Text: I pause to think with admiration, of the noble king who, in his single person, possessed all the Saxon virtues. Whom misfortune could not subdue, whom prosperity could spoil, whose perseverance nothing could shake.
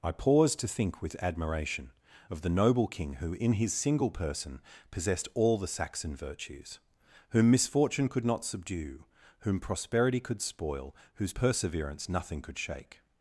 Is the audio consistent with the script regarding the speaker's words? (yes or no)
yes